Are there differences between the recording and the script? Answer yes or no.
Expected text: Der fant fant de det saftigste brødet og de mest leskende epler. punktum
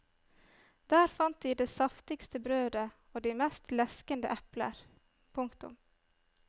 yes